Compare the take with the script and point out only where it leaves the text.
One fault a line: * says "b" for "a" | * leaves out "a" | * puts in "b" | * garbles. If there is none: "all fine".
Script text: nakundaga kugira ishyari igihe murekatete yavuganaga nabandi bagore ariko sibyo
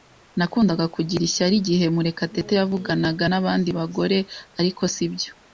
all fine